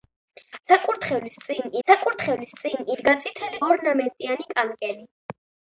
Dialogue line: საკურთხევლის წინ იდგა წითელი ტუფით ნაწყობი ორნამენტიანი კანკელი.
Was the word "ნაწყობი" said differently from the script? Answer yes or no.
yes